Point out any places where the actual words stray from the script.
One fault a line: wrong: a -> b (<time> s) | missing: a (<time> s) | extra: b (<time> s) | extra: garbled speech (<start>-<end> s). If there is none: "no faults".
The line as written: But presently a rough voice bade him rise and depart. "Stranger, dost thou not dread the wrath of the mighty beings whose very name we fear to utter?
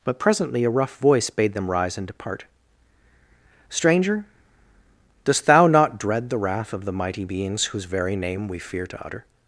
wrong: him -> them (1.5 s)